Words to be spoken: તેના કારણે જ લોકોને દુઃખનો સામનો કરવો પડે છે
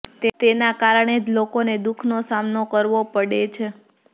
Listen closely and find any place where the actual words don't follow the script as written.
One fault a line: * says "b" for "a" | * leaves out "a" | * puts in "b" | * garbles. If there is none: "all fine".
all fine